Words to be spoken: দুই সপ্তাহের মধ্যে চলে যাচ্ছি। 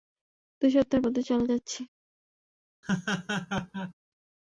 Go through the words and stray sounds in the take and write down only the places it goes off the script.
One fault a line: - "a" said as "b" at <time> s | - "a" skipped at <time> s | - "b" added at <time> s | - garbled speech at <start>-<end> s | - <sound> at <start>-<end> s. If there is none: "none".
- laugh at 2.8-3.9 s